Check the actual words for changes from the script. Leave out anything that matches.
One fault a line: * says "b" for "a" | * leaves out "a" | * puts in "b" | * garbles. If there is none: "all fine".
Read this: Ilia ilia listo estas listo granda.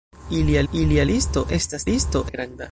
all fine